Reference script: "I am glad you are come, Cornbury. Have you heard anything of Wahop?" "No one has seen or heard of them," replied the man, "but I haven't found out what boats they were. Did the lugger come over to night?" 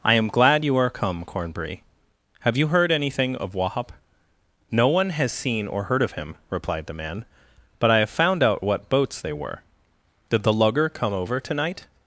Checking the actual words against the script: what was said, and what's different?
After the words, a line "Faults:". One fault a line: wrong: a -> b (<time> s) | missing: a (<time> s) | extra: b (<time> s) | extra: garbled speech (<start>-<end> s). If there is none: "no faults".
"I am glad you are come, Cornbury. Have you heard anything of Wahop?" "No one has seen or heard of him," replied the man, "but I have found out what boats they were. Did the lugger come over to night?"
Faults:
wrong: them -> him (6.1 s)
wrong: haven't -> have (8.0 s)